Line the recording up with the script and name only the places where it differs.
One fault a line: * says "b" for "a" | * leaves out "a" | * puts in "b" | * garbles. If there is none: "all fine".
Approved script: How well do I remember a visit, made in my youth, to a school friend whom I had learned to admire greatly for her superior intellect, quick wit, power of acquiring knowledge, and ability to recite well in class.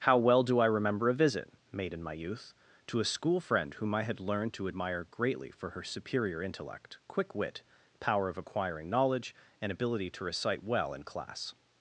all fine